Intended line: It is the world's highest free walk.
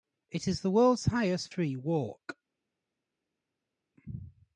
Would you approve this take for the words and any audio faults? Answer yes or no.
yes